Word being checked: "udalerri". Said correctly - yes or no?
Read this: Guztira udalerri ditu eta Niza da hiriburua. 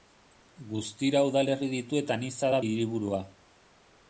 yes